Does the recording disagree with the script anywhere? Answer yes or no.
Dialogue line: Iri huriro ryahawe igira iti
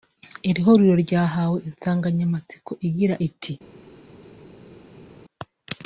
yes